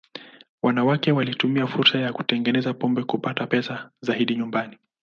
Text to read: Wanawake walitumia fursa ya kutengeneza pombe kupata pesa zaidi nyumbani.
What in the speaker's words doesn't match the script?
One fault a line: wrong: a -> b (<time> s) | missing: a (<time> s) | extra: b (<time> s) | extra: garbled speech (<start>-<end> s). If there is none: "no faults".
no faults